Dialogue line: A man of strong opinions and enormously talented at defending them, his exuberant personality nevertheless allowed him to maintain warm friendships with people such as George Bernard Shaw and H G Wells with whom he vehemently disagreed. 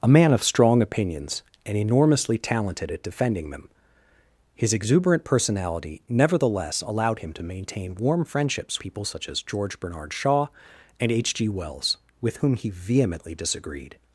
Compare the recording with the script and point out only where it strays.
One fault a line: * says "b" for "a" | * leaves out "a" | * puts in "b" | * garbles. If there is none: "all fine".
* leaves out "with"